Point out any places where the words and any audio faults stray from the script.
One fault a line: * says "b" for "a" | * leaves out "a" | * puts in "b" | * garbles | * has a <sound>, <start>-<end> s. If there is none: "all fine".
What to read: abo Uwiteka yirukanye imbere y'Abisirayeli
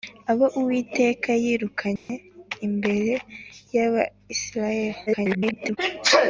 * has a dropout, 2.0-2.1 s
* garbles